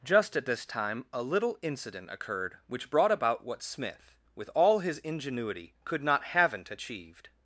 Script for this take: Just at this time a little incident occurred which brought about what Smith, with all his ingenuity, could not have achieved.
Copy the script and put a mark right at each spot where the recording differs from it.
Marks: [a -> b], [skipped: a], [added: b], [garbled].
Just at this time a little incident occurred which brought about what Smith, with all his ingenuity, could not [have -> haven't] achieved.